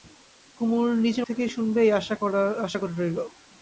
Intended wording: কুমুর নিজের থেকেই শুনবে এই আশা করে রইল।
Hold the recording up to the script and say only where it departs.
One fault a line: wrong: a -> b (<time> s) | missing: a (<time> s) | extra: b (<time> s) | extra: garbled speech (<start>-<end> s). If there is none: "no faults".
no faults